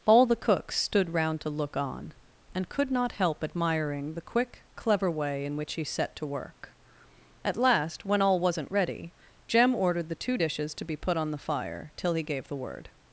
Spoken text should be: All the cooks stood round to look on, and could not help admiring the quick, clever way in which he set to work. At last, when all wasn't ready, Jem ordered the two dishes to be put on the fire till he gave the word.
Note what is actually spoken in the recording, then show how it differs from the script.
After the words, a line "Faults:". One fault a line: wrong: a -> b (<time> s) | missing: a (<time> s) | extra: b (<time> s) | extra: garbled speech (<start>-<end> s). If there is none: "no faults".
All the cooks stood round to look on, and could not help admiring the quick, clever way in which he set to work. At last, when all wasn't ready, Jem ordered the two dishes to be put on the fire till he gave the word.
Faults:
no faults